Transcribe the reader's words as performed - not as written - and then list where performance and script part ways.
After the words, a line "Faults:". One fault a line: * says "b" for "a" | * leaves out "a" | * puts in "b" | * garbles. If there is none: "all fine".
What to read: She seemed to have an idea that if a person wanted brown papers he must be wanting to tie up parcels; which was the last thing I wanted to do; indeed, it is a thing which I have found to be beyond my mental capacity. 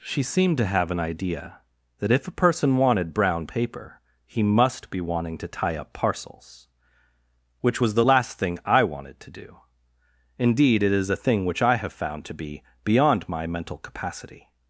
She seemed to have an idea that if a person wanted brown paper he must be wanting to tie up parcels; which was the last thing I wanted to do; indeed, it is a thing which I have found to be beyond my mental capacity.
Faults:
* says "paper" for "papers"